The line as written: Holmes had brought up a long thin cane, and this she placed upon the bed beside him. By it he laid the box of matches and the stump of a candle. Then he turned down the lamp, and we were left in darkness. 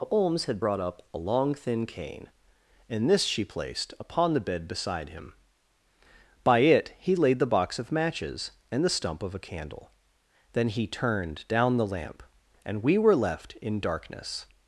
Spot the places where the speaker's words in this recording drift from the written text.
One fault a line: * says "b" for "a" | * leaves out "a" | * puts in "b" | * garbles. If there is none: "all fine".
all fine